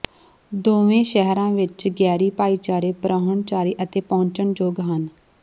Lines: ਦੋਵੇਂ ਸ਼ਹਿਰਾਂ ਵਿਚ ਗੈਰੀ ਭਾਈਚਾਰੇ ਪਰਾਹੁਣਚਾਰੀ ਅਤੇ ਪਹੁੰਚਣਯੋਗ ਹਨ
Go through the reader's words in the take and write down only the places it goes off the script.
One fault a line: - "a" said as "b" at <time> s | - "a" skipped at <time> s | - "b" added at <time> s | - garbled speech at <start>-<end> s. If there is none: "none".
none